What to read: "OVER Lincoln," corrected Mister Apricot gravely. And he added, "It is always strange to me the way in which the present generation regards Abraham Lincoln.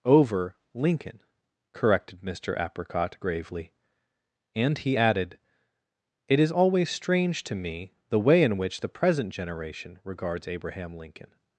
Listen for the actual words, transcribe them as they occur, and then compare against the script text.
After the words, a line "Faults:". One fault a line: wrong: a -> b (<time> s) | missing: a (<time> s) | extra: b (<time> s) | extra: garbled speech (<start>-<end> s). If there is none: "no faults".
"OVER Lincoln," corrected Mister Apricot gravely. And he added, "It is always strange to me the way in which the present generation regards Abraham Lincoln.
Faults:
no faults